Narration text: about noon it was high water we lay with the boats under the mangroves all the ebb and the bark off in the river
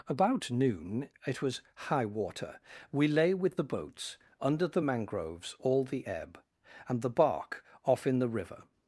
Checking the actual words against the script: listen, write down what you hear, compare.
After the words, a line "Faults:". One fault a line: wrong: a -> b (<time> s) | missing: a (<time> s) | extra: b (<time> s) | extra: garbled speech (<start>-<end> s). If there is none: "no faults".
about noon it was high water we lay with the boats under the mangroves all the ebb and the bark off in the river
Faults:
no faults